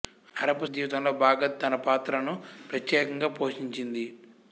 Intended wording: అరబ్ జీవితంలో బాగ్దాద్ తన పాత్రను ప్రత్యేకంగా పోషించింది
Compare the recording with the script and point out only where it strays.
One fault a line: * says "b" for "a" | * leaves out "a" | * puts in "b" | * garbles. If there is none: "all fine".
all fine